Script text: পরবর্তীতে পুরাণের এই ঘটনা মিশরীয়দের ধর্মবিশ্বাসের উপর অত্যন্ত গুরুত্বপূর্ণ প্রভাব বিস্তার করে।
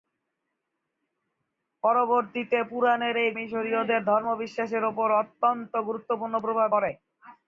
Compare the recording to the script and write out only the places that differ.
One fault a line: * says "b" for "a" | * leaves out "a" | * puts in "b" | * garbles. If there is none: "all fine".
* leaves out "ঘটনা"
* leaves out "বিস্তার"